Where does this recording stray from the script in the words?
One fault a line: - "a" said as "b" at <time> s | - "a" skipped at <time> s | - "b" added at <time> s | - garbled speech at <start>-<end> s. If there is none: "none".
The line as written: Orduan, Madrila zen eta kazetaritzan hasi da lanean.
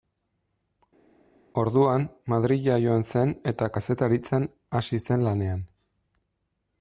- "joan" added at 2.8 s
- "da" said as "zen" at 5.1 s